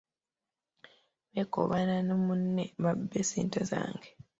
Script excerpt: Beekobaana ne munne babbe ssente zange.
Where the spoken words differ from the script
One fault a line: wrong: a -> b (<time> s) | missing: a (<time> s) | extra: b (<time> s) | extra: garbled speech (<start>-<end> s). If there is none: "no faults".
no faults